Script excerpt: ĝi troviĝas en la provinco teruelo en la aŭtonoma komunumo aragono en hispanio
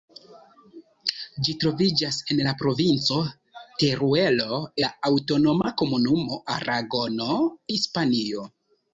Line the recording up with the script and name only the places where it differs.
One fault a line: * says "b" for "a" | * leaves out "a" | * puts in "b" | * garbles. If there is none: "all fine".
* leaves out "en"
* leaves out "en"